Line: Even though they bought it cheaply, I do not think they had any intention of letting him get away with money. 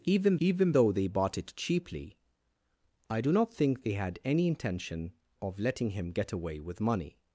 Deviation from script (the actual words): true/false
true